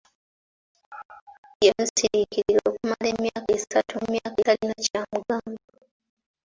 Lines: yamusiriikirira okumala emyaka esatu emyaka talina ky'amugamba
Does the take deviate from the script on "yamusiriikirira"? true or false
false